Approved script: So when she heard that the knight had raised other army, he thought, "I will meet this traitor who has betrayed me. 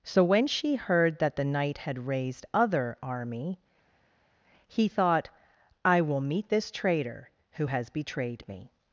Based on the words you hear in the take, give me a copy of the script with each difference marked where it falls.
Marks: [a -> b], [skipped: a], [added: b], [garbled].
So when she heard that the knight had raised other army, he thought, "I will meet this traitor who has betrayed me.